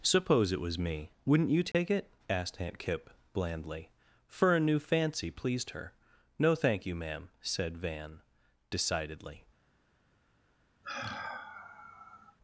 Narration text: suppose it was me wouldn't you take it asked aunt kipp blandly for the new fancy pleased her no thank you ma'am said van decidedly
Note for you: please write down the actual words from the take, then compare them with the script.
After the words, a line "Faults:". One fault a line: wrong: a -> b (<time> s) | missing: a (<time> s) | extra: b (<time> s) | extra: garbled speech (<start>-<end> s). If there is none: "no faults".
suppose it was me wouldn't you take it asked aunt kipp blandly for a new fancy pleased her no thank you ma'am said van decidedly
Faults:
wrong: the -> a (4.6 s)